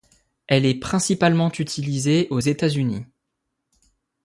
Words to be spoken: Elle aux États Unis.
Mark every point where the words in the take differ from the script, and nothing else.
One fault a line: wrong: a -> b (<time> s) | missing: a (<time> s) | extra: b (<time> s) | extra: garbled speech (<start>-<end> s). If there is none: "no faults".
extra: est principalement utilisée (0.7 s)